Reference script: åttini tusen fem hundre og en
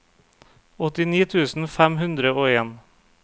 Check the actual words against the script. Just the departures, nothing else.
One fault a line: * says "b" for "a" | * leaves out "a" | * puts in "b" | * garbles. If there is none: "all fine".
all fine